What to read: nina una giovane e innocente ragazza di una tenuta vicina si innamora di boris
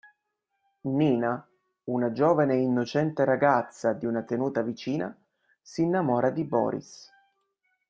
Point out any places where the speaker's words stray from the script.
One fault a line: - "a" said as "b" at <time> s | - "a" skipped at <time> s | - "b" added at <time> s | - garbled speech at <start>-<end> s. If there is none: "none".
none